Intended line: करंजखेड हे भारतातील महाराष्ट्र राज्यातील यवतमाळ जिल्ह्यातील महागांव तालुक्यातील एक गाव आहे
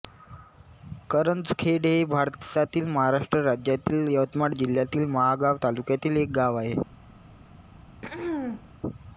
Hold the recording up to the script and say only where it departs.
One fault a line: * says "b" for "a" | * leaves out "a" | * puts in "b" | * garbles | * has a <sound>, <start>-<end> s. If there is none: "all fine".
* has a throat clearing, 7.5-8.7 s